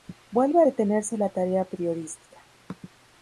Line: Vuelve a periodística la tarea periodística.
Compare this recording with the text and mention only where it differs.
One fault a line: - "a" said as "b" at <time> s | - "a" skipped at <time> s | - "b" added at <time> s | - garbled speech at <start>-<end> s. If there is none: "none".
- "periodística" said as "detenerse" at 0.6 s